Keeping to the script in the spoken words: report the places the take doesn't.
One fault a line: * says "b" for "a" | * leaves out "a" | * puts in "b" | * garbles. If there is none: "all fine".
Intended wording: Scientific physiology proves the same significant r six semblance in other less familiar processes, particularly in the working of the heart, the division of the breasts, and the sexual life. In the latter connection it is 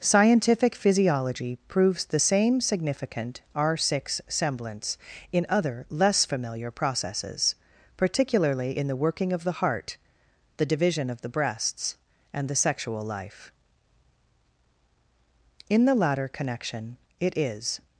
all fine